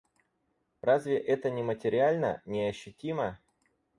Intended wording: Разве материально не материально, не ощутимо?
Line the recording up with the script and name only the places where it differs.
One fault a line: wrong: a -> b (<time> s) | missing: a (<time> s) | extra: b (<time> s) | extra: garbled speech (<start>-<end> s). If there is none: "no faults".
wrong: материально -> это (1.2 s)